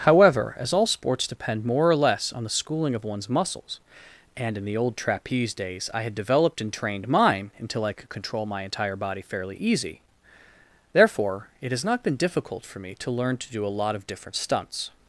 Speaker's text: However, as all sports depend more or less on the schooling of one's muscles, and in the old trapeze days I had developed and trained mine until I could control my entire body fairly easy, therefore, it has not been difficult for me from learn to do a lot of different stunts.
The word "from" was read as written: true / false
false